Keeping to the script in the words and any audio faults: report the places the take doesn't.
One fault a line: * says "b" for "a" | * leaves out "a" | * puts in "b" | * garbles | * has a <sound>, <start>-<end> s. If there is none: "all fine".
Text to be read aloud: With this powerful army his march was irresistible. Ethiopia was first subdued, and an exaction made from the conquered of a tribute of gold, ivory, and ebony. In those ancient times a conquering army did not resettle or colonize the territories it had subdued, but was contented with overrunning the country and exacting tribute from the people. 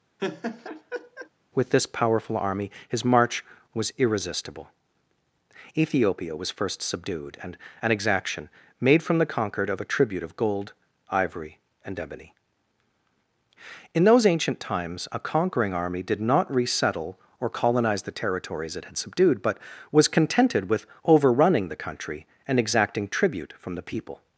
* has a laugh, 0.2-1.3 s